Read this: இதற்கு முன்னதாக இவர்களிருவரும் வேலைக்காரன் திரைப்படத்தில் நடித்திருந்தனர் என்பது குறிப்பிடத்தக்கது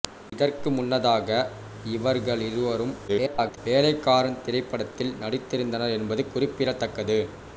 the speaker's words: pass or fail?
fail